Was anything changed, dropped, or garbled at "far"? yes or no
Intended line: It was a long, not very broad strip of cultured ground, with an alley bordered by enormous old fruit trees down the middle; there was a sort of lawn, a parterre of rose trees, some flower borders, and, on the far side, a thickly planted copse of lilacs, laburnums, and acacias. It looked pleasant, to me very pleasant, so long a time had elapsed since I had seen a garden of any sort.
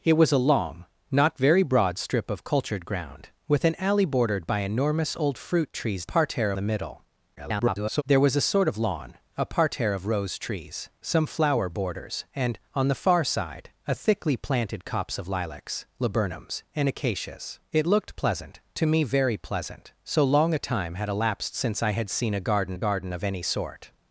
no